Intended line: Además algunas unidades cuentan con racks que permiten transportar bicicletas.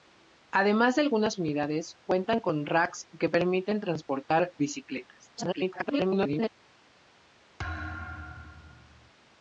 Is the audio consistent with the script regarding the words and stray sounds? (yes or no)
no